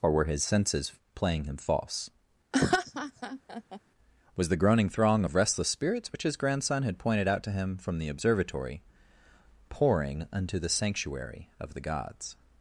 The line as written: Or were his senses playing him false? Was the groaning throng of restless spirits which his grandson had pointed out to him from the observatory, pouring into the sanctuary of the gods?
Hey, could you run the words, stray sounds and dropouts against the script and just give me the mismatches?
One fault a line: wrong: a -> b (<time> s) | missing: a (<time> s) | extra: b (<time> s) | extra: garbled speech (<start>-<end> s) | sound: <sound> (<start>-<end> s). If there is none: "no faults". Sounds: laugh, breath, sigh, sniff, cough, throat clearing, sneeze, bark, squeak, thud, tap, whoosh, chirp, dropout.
sound: laugh (2.5-3.8 s)
wrong: into -> unto (10.3 s)